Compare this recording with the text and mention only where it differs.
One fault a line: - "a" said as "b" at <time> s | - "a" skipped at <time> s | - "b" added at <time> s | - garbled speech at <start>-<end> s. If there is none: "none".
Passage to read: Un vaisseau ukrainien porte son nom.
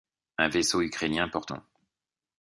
- "son" skipped at 1.5 s